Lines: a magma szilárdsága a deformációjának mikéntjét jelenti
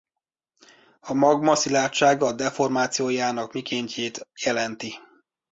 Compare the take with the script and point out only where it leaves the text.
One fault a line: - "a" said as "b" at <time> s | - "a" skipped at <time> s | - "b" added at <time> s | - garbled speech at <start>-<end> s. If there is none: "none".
none